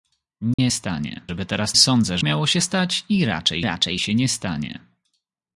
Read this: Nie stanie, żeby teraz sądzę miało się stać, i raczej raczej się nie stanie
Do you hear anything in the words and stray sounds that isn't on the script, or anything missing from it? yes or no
yes